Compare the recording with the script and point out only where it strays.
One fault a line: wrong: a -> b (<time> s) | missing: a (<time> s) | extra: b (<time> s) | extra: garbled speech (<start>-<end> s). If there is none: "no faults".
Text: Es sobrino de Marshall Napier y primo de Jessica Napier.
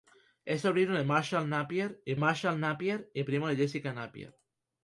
extra: Marshall Napier y (2.2 s)